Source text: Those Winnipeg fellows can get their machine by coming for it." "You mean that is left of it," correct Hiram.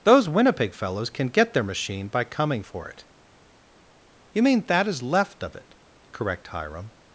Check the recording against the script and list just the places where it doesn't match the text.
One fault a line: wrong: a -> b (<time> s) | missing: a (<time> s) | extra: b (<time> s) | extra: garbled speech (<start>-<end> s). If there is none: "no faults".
no faults